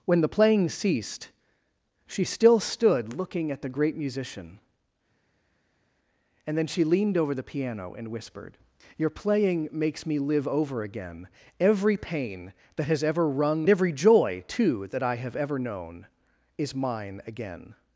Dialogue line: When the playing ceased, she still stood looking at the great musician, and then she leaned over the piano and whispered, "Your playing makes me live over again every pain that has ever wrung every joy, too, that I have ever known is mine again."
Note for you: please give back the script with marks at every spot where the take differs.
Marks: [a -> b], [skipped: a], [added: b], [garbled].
When the playing ceased, she still stood looking at the great musician, and then she leaned over the piano and whispered, "Your playing makes me live over again every pain that has ever wrung every joy, too, that I have ever known is mine again."